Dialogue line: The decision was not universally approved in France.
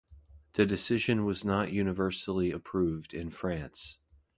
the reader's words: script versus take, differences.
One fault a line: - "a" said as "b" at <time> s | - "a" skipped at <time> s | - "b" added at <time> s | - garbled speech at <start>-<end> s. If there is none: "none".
none